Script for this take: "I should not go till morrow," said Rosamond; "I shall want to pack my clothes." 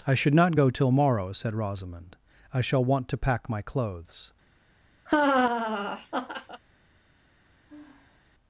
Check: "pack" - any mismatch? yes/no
no